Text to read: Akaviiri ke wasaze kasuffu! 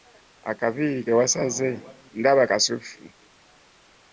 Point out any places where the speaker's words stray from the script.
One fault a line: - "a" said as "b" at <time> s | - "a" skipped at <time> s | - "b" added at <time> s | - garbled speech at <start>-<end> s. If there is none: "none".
- "ndaba" added at 2.2 s